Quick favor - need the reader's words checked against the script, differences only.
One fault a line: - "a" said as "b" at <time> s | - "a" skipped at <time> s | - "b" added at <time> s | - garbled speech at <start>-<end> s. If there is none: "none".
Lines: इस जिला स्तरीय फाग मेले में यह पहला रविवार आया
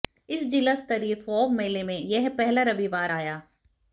none